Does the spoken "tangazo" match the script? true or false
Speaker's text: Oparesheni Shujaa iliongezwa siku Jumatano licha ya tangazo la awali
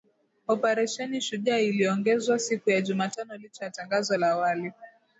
true